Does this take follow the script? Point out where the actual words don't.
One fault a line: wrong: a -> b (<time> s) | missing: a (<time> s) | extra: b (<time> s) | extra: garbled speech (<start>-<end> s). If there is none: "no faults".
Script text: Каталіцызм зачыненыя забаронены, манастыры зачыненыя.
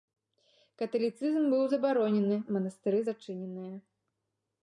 wrong: зачыненыя -> быў (1.5 s)